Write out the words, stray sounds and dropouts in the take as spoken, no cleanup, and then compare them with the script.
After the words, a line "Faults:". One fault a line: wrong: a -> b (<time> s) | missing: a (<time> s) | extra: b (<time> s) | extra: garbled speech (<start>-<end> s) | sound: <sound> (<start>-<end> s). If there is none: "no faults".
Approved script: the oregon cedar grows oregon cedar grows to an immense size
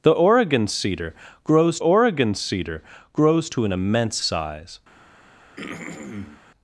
the oregon cedar grows oregon cedar grows to an immense size
Faults:
sound: throat clearing (5.6-6.4 s)